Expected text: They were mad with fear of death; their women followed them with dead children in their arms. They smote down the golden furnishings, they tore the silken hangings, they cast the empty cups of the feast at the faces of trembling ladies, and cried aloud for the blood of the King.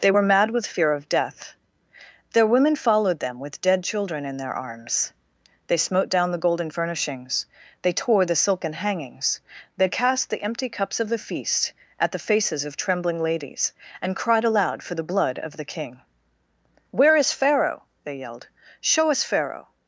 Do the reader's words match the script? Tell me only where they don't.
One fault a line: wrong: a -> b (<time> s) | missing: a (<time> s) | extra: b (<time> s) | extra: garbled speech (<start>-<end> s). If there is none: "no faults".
extra: Where is Pharaoh they yelled show us Pharaoh (16.9 s)